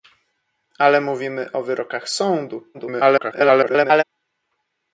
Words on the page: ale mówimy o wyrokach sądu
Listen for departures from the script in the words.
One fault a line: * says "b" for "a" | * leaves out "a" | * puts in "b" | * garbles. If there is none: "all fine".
* garbles